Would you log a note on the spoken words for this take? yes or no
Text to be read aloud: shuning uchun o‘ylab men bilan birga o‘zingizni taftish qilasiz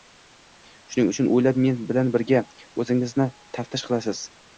no